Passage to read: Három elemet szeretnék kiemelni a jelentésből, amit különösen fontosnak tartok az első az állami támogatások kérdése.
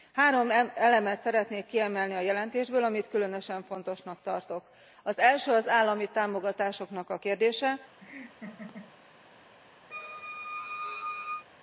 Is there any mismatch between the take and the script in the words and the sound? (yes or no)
yes